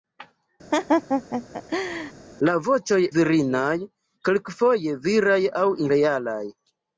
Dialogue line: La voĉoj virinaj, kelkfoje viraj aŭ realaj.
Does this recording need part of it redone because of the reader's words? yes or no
no